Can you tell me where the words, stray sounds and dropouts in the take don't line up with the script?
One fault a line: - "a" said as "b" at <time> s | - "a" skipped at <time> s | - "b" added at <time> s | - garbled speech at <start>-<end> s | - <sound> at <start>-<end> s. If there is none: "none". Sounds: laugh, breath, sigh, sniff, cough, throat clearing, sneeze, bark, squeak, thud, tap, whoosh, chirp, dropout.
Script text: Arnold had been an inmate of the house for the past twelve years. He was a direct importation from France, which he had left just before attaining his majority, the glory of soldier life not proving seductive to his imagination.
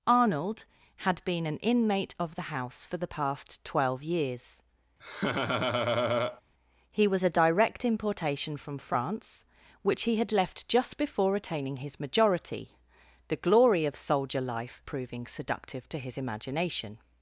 - laugh at 5.0-6.4 s
- "not" skipped at 14.8 s